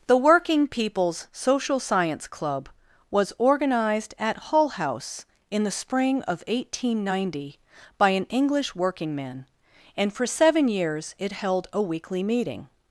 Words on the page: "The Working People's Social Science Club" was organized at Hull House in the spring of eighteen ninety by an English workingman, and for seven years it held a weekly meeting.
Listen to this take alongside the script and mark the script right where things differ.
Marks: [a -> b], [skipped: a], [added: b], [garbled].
"The Working People's Social Science Club" was organized at Hull House in the spring of eighteen ninety by an English workingman, and for seven years it held a weekly meeting.